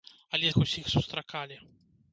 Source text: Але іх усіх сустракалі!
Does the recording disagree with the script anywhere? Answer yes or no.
no